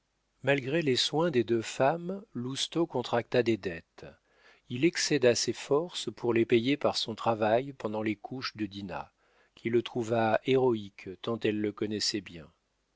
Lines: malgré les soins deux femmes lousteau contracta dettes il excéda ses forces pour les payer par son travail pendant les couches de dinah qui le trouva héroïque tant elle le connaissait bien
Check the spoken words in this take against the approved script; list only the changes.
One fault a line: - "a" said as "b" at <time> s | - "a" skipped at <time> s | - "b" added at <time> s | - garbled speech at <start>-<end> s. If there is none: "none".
- "des" added at 1.3 s
- "des" added at 3.4 s